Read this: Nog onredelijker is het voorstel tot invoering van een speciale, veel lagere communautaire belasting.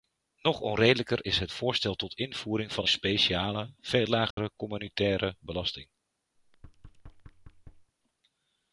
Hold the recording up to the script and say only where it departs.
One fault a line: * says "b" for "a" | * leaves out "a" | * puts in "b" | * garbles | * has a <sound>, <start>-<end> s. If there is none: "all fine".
* has a dropout, 4.3-4.4 s
* has a thud, 6.4-7.9 s